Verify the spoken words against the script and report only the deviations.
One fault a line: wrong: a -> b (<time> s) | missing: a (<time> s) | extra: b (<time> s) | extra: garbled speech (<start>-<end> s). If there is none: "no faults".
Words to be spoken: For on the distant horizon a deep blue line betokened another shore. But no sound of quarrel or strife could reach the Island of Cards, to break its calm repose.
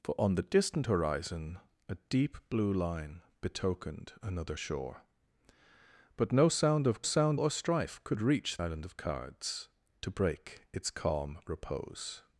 wrong: quarrel -> sound (7.0 s)
missing: the (8.6 s)